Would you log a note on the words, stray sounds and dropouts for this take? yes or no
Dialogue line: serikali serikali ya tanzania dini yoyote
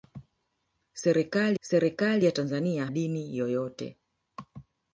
no